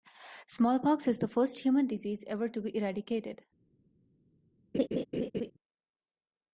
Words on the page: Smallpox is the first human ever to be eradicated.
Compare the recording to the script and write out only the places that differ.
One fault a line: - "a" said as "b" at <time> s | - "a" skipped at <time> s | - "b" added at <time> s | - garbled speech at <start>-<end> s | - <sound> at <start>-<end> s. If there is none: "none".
- "disease" added at 1.9 s
- laugh at 4.7-5.5 s